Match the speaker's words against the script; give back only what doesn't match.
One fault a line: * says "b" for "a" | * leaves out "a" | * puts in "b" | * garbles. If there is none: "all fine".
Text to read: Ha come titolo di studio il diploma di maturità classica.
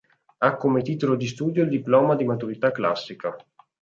all fine